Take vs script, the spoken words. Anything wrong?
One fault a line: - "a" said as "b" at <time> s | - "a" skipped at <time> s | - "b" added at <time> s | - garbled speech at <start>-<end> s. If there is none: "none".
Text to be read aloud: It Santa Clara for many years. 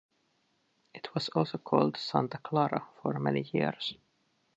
- "was also called" added at 1.1 s